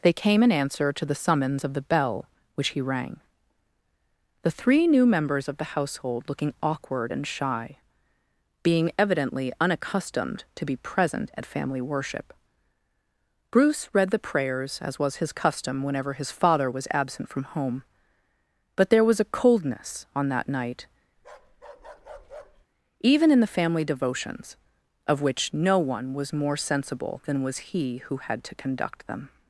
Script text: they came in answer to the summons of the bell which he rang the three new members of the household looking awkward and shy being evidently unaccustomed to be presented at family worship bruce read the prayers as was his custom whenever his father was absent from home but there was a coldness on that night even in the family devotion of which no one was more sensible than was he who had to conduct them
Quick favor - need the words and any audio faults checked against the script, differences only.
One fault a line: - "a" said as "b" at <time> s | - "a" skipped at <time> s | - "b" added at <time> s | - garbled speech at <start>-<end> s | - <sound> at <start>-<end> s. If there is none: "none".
- "presented" said as "present" at 10.8 s
- bark at 21.2-22.7 s
- "devotion" said as "devotions" at 23.9 s